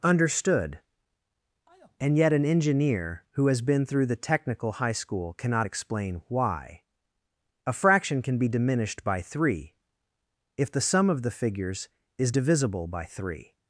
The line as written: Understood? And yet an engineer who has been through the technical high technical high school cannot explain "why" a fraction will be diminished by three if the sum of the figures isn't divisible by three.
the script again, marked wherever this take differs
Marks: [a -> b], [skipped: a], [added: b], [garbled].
Understood? And yet an engineer who has been through the technical high [skipped: technical high] school cannot explain "why" a fraction [will -> can] be diminished by three if the sum of the figures [isn't -> is] divisible by three.